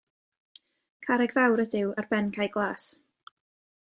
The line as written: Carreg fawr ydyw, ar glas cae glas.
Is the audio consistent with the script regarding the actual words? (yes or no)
no